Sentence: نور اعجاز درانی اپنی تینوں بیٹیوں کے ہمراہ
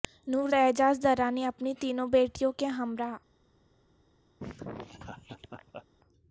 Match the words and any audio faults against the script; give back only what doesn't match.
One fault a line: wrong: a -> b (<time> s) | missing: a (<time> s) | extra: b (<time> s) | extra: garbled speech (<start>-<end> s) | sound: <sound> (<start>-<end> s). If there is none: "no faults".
sound: laugh (4.4-5.9 s)